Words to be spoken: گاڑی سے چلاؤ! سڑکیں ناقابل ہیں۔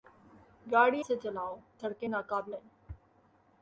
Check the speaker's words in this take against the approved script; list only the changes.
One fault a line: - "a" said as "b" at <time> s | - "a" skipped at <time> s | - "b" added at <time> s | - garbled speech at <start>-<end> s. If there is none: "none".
none